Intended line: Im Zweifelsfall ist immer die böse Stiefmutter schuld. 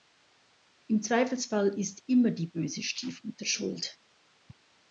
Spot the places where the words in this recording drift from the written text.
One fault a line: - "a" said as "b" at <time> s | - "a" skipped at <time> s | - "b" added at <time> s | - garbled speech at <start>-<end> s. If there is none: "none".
none